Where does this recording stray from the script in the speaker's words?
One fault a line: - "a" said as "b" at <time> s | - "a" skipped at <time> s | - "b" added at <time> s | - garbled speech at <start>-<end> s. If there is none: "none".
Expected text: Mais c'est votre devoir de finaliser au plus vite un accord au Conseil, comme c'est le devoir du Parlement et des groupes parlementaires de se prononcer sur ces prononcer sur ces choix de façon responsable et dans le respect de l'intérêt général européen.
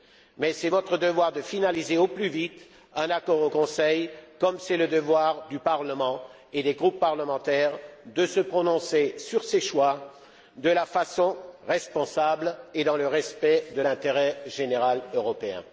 - "prononcer sur ces" skipped at 9.6 s